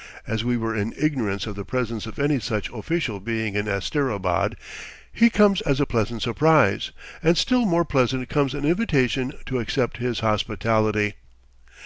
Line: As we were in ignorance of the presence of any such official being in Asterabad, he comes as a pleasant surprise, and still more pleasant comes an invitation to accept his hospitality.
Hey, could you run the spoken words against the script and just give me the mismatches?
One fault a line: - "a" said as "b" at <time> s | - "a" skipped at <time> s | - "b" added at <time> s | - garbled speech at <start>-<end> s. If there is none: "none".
none